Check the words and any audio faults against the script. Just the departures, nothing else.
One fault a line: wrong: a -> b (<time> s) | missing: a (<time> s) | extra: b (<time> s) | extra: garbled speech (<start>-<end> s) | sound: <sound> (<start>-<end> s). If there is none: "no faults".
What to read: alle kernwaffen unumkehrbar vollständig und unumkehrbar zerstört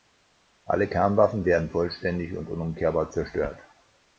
wrong: unumkehrbar -> werden (1.4 s)